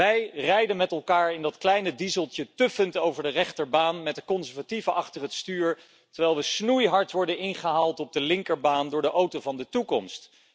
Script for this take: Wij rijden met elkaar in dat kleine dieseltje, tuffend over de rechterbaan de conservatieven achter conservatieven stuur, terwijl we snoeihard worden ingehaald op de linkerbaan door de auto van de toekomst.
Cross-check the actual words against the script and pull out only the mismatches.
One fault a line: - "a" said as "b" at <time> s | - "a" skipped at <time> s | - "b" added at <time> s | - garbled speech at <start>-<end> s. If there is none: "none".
- "met" added at 4.0 s
- "conservatieven" said as "het" at 5.2 s